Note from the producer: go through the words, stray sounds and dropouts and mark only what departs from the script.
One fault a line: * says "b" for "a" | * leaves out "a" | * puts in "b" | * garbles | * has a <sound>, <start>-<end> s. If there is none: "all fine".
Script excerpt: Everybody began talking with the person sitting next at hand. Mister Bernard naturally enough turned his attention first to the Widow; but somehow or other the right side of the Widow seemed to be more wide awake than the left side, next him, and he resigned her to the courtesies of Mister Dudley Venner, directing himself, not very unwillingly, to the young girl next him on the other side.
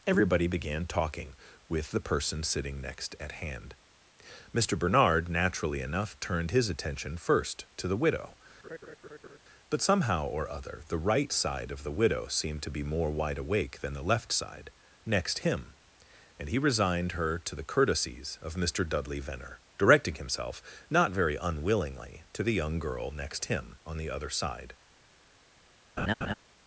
* has a laugh, 8.6-9.4 s
* has a laugh, 26.0-26.3 s